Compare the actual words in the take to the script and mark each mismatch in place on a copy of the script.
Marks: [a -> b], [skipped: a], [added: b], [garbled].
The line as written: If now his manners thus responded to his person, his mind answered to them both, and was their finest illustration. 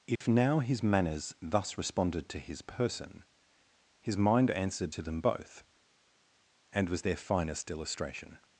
If now his manners thus responded to his person, his mind answered to them both, and was their finest illustration.